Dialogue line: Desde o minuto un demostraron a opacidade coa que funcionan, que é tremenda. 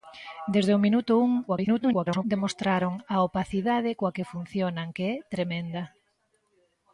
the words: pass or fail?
fail